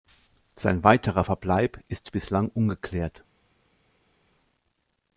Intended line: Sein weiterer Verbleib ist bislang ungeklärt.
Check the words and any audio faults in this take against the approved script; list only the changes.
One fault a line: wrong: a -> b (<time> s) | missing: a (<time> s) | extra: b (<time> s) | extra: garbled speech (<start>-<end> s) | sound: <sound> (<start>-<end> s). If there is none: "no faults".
no faults